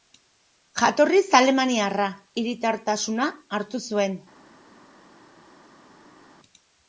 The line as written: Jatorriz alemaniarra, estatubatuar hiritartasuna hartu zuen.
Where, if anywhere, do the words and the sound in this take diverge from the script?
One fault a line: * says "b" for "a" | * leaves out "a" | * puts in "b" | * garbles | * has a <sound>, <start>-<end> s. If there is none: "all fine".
* leaves out "estatubatuar"